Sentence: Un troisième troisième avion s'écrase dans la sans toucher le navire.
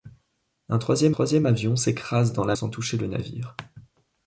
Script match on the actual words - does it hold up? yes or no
yes